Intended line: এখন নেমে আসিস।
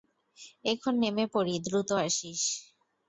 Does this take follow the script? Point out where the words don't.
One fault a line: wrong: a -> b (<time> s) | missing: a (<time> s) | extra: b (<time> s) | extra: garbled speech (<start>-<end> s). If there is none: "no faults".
extra: পড়ি দ্রুত (1.3 s)